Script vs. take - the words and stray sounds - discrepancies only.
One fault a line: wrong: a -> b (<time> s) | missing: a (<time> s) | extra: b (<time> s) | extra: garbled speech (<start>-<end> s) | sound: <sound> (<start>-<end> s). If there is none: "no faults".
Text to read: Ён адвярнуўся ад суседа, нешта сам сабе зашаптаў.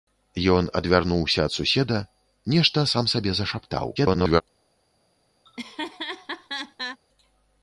extra: garbled speech (4.0-4.4 s)
sound: laugh (5.4-7.0 s)